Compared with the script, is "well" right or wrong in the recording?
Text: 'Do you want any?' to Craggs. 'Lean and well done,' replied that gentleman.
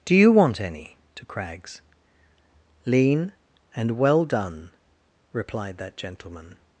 right